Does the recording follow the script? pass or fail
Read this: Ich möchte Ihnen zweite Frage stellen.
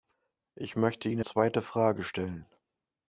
pass